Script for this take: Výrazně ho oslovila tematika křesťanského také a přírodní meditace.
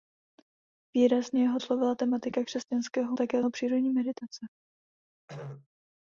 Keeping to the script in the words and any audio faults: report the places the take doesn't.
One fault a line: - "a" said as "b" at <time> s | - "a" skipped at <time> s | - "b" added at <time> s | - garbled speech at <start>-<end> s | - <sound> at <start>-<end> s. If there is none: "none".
- throat clearing at 5.3-5.7 s